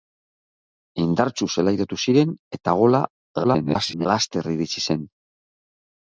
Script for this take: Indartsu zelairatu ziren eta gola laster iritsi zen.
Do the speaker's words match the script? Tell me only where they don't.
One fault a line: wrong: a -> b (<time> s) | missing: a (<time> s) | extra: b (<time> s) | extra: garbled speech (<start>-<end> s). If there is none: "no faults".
extra: garbled speech (3.4-4.1 s)